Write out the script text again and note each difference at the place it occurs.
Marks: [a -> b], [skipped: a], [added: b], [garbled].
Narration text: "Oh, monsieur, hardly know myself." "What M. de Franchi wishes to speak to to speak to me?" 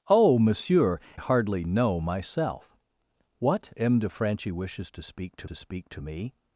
"Oh, monsieur, hardly know myself." "What M. de Franchi wishes to speak to to speak to me?"